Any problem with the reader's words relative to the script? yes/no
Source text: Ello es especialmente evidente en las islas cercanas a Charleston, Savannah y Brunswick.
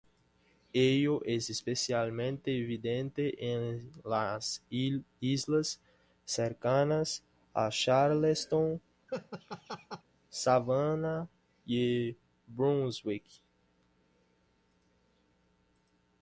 no